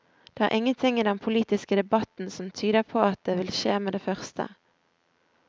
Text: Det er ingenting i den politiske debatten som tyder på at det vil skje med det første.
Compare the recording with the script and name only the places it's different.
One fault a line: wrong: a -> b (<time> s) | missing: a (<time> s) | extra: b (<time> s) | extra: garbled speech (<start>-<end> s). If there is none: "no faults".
no faults